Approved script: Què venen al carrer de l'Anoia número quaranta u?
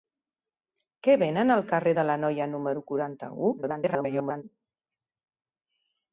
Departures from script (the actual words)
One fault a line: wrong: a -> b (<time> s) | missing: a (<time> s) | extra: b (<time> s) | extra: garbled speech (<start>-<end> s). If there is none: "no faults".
extra: garbled speech (3.6-4.4 s)